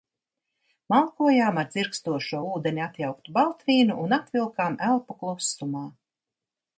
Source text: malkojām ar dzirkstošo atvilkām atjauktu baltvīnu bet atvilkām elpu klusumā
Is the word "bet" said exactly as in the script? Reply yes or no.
no